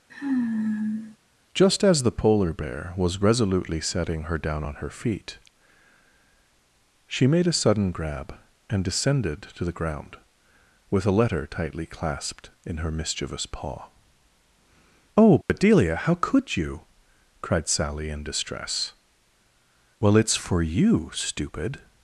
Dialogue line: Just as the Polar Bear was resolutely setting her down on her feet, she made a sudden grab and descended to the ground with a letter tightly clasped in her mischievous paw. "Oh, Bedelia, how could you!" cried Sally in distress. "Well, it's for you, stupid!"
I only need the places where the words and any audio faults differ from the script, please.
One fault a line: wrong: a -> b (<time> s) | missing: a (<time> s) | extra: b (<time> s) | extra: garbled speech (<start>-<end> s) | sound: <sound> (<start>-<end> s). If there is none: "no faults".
sound: sigh (0.1-1.2 s)
sound: dropout (15.4-15.5 s)